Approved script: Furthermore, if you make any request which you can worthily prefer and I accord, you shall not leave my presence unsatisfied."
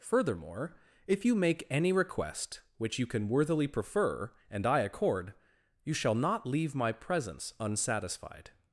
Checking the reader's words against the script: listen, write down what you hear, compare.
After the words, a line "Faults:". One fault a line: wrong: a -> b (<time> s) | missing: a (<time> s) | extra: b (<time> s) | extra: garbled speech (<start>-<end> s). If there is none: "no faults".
Furthermore, if you make any request which you can worthily prefer and I accord, you shall not leave my presence unsatisfied."
Faults:
no faults